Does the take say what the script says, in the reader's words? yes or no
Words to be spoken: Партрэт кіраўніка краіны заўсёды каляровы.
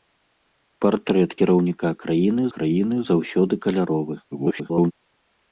no